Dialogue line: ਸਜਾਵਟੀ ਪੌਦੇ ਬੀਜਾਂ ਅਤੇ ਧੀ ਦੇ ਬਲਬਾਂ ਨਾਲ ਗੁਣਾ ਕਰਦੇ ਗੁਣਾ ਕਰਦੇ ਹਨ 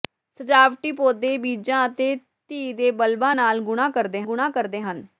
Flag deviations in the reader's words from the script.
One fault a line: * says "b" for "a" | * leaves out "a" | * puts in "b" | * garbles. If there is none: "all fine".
all fine